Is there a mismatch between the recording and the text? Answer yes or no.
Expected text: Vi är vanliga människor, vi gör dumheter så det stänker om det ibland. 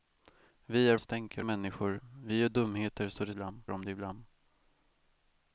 yes